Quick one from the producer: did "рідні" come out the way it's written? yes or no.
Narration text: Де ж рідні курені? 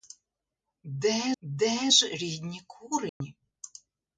yes